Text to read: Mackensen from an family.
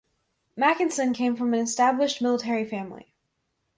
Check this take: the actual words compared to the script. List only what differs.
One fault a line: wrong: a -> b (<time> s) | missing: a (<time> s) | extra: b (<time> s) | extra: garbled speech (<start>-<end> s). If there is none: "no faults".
extra: came (1.1 s)
extra: established military (1.6 s)